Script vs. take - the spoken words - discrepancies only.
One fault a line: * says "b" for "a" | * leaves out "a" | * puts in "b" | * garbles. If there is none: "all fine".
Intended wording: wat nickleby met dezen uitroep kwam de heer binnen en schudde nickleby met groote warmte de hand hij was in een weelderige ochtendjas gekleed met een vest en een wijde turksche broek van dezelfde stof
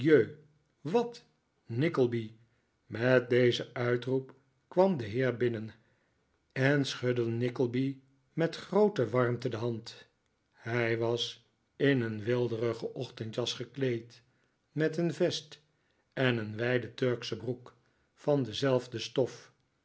all fine